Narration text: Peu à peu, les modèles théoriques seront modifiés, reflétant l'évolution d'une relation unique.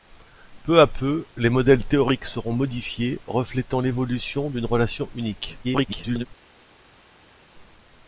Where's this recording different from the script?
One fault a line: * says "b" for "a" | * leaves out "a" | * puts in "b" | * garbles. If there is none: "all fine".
* garbles